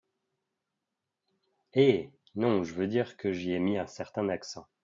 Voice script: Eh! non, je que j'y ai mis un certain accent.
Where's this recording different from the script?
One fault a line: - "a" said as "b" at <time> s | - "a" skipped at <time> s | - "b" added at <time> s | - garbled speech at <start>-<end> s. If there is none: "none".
- "veux dire" added at 2.7 s